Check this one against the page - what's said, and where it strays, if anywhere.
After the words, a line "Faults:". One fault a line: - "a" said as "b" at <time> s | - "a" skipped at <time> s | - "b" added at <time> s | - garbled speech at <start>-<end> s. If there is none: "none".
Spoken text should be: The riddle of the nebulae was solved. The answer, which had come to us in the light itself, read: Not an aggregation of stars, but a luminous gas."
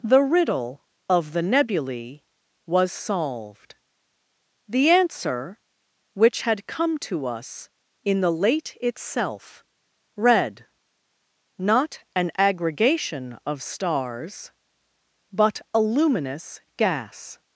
The riddle of the nebulae was solved. The answer, which had come to us in the late itself, read: Not an aggregation of stars, but a luminous gas."
Faults:
- "light" said as "late" at 8.3 s